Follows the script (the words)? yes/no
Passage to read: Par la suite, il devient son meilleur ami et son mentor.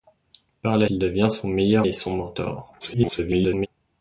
no